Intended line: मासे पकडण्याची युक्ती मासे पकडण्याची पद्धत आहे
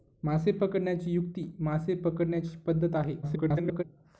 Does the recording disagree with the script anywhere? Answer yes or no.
yes